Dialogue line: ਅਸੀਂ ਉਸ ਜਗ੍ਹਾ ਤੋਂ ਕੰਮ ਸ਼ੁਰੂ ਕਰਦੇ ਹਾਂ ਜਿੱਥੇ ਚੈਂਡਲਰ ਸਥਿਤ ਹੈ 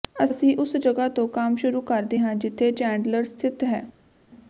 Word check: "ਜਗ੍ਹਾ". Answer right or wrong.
right